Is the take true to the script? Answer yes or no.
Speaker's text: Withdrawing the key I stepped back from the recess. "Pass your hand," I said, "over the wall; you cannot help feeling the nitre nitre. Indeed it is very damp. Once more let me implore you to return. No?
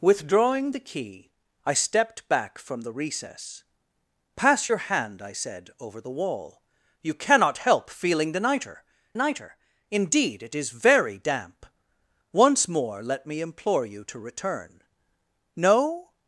yes